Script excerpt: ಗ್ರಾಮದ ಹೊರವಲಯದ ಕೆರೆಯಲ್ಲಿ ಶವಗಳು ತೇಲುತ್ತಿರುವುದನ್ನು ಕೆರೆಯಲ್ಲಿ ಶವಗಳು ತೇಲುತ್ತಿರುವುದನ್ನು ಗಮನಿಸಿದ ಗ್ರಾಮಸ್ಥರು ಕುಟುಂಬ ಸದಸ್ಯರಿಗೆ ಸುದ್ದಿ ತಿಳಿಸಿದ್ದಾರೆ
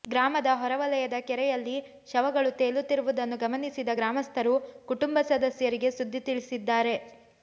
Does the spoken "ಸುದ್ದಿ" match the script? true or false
true